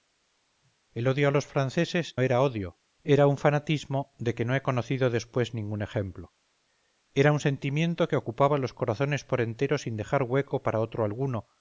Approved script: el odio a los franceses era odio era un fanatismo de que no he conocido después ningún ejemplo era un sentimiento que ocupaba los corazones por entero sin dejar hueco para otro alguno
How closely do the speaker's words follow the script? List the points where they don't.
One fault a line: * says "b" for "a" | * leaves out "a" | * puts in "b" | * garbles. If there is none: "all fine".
all fine